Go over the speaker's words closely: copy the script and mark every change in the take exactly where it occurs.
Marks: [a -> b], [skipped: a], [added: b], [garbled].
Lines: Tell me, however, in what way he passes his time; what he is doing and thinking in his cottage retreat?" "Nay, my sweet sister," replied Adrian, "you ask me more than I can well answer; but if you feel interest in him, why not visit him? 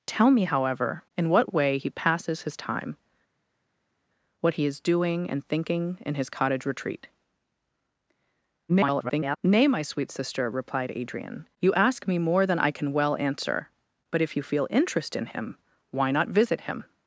Tell me, however, in what way he passes his time; what he is doing and thinking in his cottage retreat?" [garbled] "Nay, my sweet sister," replied Adrian, "you ask me more than I can well answer; but if you feel interest in him, why not visit him?